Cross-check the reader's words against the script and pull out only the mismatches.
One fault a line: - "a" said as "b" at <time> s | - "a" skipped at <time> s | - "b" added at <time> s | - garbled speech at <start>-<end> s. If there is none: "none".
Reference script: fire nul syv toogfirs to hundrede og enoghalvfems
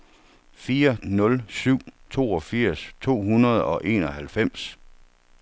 none